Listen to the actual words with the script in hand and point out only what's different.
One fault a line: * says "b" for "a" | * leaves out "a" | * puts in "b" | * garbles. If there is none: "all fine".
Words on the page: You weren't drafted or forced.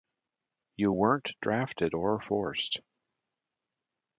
all fine